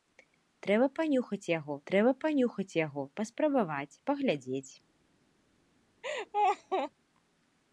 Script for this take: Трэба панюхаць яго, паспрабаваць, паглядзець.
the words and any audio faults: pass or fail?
fail